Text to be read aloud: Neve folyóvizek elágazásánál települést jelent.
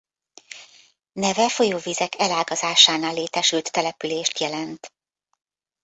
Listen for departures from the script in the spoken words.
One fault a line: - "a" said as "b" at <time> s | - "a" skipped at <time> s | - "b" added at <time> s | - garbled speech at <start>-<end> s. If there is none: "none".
- "létesült" added at 3.1 s